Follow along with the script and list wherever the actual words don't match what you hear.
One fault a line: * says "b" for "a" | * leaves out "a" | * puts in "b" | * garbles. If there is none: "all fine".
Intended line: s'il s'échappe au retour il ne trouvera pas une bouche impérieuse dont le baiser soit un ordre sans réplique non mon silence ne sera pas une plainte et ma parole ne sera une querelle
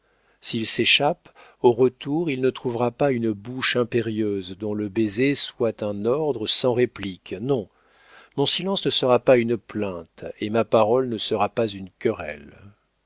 * puts in "pas"